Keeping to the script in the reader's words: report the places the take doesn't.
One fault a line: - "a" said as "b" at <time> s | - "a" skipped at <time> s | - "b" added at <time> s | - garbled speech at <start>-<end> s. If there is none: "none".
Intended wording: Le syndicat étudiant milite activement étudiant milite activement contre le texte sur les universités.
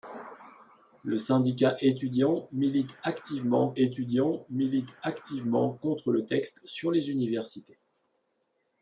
none